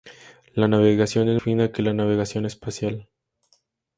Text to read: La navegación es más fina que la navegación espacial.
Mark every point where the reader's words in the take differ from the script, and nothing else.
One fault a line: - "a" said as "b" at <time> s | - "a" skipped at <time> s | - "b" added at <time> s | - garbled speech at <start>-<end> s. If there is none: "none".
- "más" skipped at 1.4 s